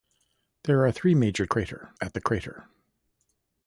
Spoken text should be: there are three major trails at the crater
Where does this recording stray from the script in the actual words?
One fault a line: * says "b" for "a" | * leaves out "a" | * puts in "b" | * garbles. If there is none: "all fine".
* says "crater" for "trails"